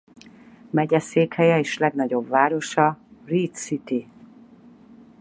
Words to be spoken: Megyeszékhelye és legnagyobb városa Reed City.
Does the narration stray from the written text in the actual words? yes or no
no